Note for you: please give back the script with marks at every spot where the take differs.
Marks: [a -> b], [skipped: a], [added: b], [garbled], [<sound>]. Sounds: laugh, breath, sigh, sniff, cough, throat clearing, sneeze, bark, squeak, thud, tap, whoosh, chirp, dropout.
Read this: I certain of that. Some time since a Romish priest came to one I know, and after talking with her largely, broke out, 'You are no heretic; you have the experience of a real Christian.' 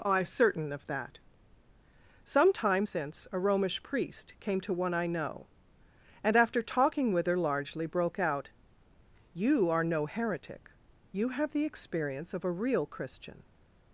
I certain of that. Some time since a Romish priest came to one I know, and after talking with her largely, broke out, 'You are no heretic; you have the experience of a real Christian.'